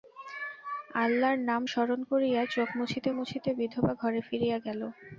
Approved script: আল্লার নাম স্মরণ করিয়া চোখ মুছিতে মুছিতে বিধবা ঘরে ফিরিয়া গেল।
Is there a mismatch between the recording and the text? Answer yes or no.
no